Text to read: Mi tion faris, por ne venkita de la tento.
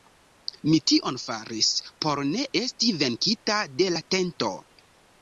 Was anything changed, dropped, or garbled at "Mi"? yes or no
no